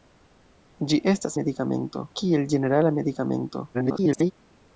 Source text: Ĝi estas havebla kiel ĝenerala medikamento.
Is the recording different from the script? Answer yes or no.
yes